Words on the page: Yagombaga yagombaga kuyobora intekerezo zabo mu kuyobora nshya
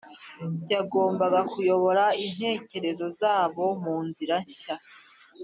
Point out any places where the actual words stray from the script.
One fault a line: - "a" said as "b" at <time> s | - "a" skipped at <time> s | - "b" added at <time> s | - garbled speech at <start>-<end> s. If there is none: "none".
- "yagombaga" skipped at 1.4 s
- "kuyobora" said as "nzira" at 4.1 s